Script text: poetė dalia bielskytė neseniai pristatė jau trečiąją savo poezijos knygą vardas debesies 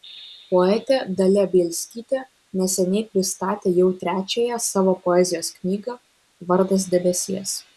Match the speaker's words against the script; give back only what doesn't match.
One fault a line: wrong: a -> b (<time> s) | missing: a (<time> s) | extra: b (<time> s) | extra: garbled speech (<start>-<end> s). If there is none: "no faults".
no faults